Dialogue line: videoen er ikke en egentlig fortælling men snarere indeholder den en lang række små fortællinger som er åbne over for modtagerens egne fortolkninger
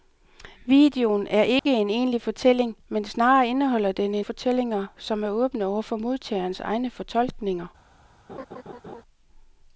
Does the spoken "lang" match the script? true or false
false